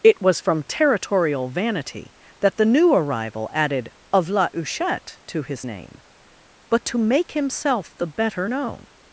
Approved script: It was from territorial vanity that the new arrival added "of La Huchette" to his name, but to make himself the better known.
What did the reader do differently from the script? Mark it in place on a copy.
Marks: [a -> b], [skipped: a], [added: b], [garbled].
It was from territorial vanity that the new arrival added "of La Huchette" to his name, but to make himself the better known.